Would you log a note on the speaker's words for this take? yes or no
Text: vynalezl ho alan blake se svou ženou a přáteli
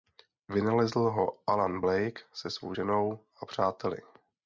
no